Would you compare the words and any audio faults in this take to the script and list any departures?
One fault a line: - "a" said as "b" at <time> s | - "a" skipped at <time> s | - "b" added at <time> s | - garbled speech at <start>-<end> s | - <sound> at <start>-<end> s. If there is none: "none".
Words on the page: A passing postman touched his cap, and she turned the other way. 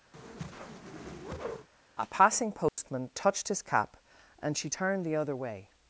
- whoosh at 0.1-1.7 s
- dropout at 2.7-2.8 s